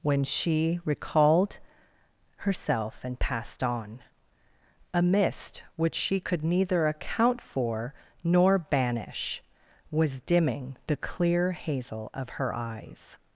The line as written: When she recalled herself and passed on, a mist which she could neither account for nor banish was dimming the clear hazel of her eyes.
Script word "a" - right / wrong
right